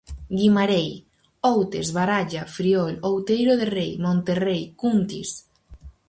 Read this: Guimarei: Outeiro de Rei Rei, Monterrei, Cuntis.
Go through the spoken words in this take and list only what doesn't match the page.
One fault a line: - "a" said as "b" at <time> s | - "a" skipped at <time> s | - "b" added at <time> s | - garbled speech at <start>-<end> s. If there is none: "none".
- "Outes Baralla Friol" added at 1.5 s
- "Rei" skipped at 3.9 s